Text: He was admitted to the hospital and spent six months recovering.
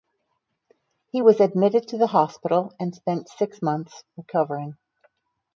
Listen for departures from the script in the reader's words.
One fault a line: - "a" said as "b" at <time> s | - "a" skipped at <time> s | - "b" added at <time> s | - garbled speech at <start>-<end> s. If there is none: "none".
none